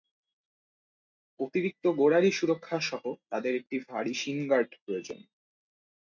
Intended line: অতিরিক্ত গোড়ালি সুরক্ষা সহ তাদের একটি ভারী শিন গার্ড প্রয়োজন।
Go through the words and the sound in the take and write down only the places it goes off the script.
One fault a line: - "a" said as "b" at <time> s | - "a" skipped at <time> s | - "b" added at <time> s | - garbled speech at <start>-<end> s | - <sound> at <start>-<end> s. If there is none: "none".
none